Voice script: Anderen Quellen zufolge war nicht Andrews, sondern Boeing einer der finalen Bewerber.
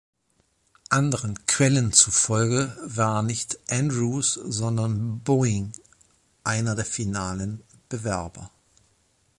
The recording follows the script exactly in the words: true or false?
true